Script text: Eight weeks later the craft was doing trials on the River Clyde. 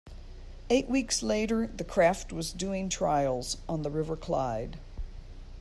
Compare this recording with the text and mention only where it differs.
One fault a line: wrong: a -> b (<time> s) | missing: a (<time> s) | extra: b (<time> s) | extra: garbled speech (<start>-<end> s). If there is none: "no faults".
no faults